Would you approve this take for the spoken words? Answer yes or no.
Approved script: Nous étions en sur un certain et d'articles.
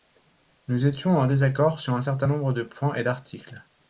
no